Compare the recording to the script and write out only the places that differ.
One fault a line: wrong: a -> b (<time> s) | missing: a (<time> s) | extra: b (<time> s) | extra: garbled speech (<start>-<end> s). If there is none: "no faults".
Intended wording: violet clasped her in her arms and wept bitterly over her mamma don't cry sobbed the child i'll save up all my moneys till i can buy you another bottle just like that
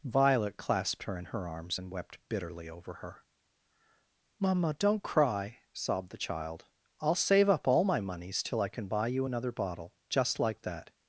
no faults